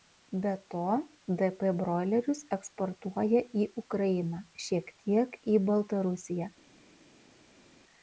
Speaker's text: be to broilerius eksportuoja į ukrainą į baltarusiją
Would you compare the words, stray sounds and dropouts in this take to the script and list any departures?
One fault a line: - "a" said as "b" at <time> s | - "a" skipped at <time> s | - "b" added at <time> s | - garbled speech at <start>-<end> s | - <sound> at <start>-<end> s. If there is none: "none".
- "dp" added at 1.4 s
- "šiek tiek" added at 4.7 s